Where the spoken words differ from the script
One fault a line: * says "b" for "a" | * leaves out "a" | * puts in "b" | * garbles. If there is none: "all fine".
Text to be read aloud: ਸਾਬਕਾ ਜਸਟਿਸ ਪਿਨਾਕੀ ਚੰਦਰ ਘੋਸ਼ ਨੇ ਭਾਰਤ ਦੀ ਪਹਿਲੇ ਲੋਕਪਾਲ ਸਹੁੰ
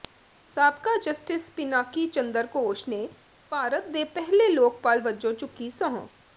* says "ਦੇ" for "ਦੀ"
* puts in "ਵਜੋਂ ਚੁੱਕੀ"